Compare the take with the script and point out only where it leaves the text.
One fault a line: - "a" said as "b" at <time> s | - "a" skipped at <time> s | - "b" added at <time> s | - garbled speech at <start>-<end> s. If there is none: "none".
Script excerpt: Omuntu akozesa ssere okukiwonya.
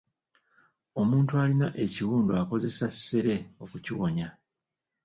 - "alina ekiwundu" added at 1.4 s